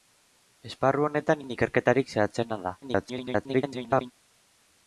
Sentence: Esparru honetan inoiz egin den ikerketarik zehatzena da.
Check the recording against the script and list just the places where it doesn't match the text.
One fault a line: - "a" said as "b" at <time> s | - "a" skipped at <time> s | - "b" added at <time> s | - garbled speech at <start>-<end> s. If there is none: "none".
- "inoiz egin" skipped at 1.4 s
- garbled speech at 2.8-4.1 s